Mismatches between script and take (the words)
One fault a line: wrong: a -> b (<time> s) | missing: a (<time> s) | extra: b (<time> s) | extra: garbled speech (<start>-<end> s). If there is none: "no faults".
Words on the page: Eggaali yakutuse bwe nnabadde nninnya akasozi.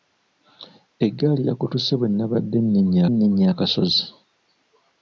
extra: nninnya (3.1 s)